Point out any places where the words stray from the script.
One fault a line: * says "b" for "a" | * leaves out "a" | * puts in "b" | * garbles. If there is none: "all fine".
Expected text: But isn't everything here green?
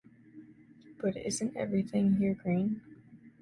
all fine